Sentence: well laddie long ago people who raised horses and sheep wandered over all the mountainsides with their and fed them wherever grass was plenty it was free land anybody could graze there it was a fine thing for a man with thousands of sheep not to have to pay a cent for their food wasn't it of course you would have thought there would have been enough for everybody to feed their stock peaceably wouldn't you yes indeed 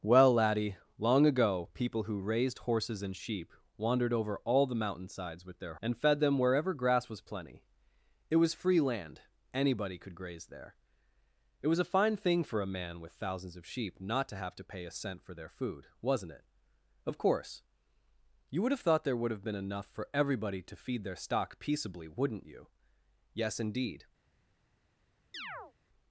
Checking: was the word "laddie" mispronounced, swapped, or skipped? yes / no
no